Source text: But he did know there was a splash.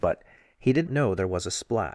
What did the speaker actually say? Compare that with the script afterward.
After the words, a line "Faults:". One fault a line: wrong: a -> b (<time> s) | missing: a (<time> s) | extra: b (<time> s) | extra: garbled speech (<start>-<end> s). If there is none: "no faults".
But he did know there was a splash.
Faults:
no faults